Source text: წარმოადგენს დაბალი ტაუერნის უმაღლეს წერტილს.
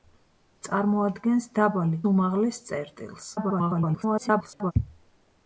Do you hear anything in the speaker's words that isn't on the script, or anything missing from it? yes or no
yes